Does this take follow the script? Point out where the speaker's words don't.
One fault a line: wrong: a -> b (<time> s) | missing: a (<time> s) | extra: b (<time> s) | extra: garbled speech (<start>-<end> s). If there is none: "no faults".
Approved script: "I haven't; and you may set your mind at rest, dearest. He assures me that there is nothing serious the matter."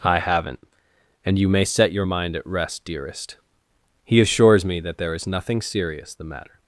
no faults